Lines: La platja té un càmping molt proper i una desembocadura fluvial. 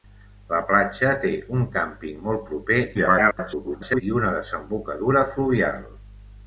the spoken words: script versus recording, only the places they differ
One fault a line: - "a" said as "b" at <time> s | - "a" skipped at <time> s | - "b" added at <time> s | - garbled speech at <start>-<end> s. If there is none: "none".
- garbled speech at 2.9-4.0 s